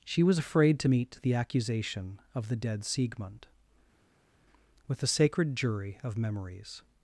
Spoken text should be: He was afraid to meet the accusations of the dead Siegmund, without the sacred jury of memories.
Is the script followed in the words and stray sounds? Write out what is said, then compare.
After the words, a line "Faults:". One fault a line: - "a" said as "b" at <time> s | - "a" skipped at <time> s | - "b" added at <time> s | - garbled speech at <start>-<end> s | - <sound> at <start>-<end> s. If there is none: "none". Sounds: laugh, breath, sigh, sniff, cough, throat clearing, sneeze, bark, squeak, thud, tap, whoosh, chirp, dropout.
She was afraid to meet the accusation of the dead Siegmund, with the sacred jury of memories.
Faults:
- "He" said as "She" at 0.1 s
- "accusations" said as "accusation" at 1.3 s
- "without" said as "with" at 4.9 s